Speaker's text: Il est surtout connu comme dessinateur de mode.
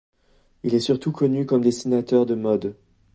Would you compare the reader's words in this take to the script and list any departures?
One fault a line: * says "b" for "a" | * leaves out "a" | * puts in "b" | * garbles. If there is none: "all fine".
all fine